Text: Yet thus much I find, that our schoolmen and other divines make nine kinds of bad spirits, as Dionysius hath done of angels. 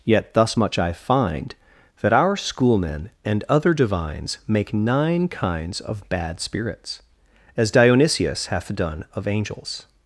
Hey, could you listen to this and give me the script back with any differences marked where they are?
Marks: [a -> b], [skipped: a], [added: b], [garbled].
Yet thus much I find, that our schoolmen and other divines make nine kinds of bad spirits, as Dionysius hath done of angels.